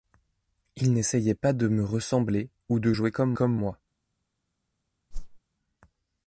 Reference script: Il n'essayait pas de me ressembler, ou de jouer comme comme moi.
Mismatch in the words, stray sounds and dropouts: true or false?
true